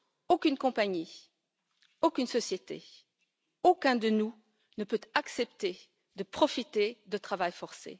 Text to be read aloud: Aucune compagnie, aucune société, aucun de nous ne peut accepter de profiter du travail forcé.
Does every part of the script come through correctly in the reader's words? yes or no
yes